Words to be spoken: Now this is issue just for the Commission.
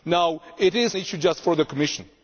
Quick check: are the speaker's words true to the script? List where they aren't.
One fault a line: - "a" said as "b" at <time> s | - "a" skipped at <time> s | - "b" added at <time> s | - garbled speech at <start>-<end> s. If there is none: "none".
none